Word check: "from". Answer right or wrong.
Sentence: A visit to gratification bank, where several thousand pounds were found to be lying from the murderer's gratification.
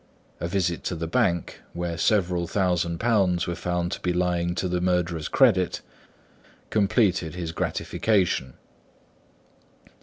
wrong